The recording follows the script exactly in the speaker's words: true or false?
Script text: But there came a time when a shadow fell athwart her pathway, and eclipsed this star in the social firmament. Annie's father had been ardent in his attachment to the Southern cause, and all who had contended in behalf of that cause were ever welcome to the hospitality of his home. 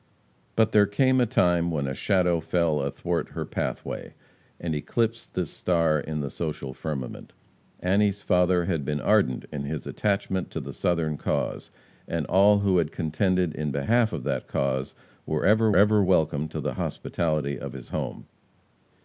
false